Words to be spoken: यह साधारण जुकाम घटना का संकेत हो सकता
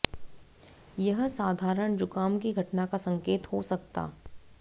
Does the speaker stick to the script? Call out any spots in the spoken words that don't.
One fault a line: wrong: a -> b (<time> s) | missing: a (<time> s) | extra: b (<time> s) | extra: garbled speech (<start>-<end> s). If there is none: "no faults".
extra: की (2.4 s)